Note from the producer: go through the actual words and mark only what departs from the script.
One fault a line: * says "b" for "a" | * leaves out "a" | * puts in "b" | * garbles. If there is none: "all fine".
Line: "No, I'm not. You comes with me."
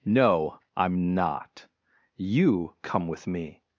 * says "come" for "comes"